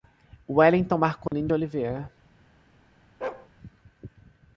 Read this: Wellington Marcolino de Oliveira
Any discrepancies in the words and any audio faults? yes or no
yes